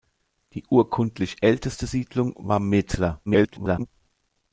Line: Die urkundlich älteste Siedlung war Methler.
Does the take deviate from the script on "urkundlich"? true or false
false